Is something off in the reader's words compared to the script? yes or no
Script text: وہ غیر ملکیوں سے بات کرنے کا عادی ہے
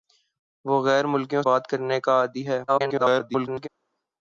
yes